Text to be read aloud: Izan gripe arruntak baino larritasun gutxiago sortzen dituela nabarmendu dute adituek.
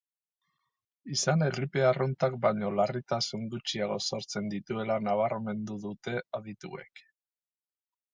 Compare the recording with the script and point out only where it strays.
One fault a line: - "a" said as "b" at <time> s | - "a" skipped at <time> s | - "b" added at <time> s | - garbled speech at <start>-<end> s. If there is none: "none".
none